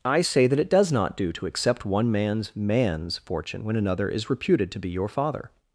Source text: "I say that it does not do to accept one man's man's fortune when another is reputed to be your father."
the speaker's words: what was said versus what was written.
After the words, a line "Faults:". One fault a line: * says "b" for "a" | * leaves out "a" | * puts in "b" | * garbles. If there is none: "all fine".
"I say that it does not do to accept one man's man's fortune when another is reputed to be your father."
Faults:
all fine